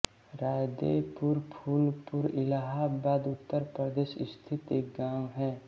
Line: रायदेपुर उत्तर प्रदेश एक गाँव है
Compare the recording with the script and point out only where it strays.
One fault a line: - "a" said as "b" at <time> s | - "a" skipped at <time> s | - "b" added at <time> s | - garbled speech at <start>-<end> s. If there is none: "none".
- "फूलपुर इलाहाबाद" added at 1.5 s
- "स्थित" added at 4.3 s